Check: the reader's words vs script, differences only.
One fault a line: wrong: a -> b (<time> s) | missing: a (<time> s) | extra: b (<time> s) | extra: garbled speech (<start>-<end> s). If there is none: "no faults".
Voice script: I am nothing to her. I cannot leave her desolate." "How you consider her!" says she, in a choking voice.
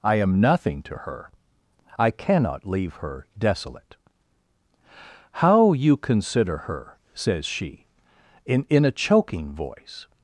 extra: in (8.7 s)